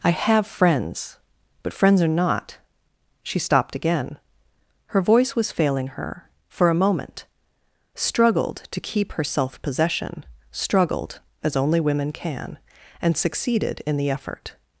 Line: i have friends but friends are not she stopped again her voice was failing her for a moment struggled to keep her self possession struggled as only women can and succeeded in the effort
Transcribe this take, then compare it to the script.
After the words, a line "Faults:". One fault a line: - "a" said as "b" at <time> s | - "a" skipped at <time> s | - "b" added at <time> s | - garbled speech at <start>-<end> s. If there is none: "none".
i have friends but friends are not she stopped again her voice was failing her for a moment struggled to keep her self possession struggled as only women can and succeeded in the effort
Faults:
none